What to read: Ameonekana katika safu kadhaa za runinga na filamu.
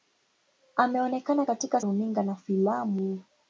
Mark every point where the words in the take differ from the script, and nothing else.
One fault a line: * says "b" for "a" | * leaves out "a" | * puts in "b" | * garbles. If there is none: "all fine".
* leaves out "safu kadhaa za"